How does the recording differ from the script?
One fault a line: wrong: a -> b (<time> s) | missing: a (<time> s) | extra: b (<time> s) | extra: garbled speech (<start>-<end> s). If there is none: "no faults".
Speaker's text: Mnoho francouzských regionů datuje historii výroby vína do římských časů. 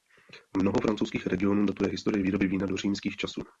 no faults